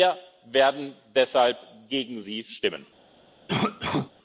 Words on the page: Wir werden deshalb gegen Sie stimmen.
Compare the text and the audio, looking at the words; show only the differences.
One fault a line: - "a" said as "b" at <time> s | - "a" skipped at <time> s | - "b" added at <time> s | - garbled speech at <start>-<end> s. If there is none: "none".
none